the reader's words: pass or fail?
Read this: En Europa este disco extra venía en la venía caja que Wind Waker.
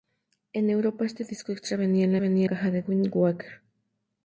pass